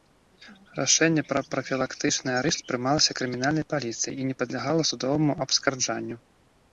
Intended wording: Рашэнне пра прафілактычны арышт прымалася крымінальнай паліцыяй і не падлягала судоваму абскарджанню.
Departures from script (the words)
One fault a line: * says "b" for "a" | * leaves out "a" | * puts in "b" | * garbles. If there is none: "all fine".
all fine